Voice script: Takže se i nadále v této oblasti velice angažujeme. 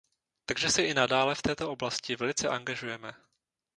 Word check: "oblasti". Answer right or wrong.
right